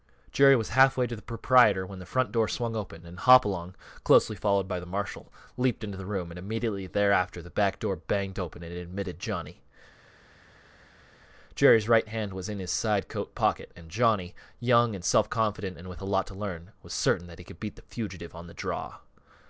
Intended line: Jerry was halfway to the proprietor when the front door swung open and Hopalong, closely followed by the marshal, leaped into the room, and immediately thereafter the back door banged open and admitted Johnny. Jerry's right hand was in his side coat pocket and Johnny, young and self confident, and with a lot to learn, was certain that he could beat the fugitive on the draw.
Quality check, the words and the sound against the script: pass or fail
pass